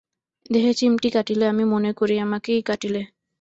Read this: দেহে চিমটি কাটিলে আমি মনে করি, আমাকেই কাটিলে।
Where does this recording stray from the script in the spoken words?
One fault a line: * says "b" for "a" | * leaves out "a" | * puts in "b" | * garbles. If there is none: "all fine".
all fine